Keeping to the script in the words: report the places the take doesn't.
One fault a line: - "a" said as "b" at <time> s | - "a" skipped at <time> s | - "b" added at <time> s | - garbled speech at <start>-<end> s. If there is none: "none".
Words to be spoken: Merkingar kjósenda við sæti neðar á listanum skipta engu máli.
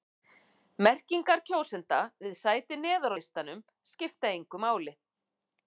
none